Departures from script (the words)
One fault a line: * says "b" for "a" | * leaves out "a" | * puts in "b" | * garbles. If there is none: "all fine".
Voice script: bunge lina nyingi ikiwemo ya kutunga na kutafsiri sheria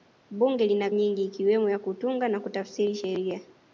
all fine